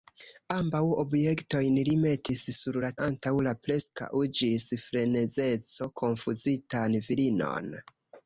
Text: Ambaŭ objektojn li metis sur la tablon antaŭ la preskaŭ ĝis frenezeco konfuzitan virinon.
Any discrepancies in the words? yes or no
yes